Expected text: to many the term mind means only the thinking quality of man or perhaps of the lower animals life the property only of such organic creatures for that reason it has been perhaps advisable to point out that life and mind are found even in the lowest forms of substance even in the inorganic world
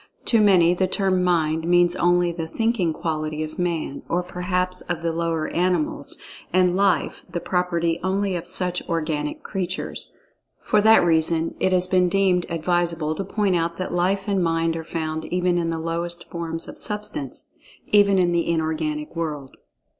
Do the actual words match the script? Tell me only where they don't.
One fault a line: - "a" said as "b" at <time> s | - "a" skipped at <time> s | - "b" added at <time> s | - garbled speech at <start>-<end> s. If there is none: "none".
- "and" added at 6.5 s
- "perhaps" said as "deemed" at 12.1 s